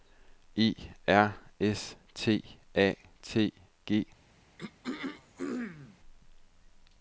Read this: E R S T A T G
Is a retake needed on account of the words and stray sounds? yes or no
yes